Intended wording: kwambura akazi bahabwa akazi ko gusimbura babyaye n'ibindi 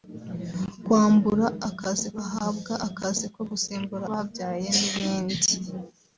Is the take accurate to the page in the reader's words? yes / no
yes